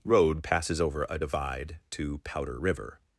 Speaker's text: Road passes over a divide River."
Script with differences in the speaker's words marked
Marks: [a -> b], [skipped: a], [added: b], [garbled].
Road passes over a divide [added: to Powder] River."